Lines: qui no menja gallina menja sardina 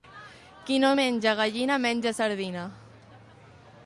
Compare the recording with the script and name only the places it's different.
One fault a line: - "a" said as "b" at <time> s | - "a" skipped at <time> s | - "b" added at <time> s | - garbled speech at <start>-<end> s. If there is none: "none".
none